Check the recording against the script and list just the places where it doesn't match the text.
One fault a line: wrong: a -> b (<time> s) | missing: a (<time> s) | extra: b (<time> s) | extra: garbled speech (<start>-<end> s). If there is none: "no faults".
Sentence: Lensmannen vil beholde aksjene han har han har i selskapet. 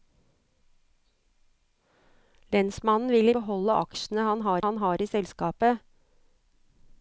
no faults